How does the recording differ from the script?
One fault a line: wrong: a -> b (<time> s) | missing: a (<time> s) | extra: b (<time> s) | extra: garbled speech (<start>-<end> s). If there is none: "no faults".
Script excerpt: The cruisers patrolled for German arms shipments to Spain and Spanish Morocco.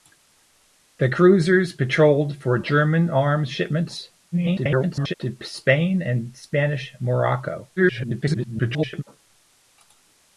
extra: garbled speech (4.3-5.1 s)
extra: garbled speech (7.8-9.0 s)